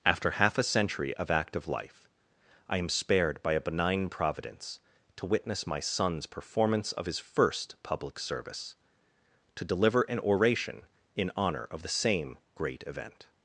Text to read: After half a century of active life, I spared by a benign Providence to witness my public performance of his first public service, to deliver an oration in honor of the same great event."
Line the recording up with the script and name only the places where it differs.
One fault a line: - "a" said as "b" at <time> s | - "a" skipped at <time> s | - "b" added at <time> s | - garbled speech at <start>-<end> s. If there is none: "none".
- "am" added at 2.8 s
- "public" said as "son's" at 5.8 s